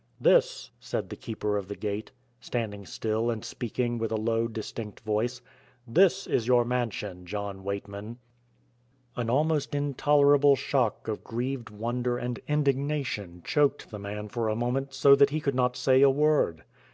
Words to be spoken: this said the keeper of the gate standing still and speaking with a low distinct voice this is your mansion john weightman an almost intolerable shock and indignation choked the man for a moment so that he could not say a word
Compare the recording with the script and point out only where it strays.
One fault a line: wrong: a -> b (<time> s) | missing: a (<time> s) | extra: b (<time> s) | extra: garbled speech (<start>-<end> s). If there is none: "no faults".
extra: of grieved wonder (11.1 s)